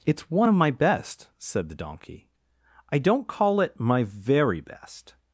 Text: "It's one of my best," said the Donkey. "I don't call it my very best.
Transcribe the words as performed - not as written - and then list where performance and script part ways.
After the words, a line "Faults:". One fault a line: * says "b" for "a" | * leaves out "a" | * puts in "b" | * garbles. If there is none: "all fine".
"It's one of my best," said the Donkey. "I don't call it my very best.
Faults:
all fine